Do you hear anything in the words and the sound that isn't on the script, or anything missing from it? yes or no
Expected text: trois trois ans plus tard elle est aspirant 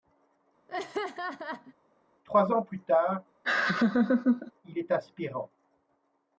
yes